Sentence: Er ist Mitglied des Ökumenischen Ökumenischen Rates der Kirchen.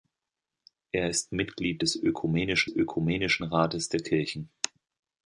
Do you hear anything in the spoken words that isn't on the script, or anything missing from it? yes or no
no